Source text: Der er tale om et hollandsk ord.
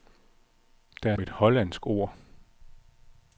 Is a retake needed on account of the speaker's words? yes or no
yes